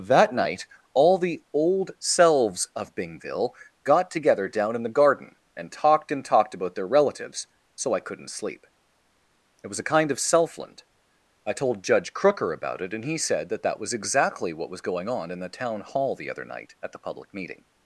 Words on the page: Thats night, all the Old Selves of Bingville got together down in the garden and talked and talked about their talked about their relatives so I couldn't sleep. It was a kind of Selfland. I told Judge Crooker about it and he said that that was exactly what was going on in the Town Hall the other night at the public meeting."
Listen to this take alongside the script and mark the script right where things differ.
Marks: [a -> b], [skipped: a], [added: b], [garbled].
[Thats -> That] night, all the Old Selves of Bingville got together down in the garden and talked and talked about their [skipped: talked about their] relatives so I couldn't sleep. It was a kind of Selfland. I told Judge Crooker about it and he said that that was exactly what was going on in the Town Hall the other night at the public meeting."